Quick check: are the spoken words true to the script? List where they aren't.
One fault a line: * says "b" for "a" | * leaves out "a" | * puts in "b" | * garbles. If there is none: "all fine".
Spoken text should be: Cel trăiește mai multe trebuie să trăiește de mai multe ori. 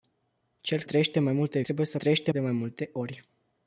all fine